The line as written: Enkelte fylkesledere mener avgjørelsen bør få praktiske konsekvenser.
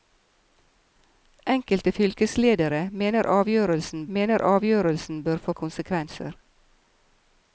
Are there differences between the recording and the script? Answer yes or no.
yes